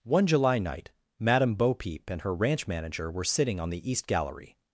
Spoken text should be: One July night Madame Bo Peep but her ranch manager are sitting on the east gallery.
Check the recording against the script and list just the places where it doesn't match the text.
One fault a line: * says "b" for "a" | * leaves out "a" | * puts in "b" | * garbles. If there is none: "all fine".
* says "and" for "but"
* says "were" for "are"